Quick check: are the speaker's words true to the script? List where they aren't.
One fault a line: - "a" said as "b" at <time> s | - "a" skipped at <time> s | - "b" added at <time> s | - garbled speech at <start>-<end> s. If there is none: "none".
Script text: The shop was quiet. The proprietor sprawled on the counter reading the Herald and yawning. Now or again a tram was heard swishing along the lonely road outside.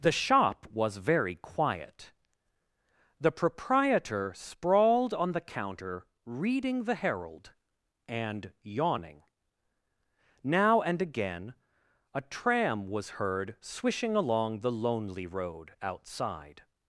- "very" added at 1.0 s
- "or" said as "and" at 10.8 s